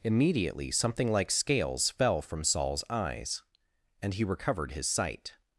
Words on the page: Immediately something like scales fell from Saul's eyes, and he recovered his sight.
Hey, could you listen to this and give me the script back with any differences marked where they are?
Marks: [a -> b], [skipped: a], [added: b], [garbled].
Immediately something like scales fell from Saul's eyes, and he recovered his sight.